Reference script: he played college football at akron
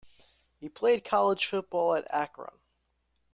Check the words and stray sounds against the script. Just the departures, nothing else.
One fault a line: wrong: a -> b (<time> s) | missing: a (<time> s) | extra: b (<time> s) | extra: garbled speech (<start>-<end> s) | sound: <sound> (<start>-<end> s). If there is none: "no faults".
no faults